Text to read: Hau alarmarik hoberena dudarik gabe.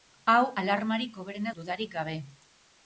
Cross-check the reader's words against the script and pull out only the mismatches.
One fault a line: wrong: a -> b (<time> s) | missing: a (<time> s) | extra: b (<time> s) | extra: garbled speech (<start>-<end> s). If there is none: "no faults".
no faults